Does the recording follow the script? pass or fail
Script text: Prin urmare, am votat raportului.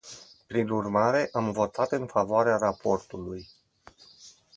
fail